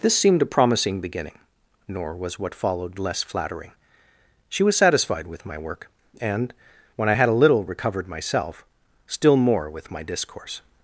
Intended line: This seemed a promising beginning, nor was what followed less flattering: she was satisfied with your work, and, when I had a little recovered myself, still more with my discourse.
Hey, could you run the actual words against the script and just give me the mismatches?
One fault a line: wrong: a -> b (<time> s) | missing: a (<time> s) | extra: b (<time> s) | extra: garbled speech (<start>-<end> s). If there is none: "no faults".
wrong: your -> my (5.5 s)